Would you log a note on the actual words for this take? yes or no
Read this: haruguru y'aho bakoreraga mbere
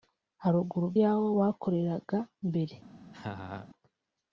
no